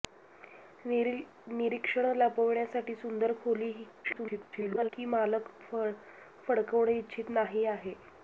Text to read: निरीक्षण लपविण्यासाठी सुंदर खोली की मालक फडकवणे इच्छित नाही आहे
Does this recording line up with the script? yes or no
no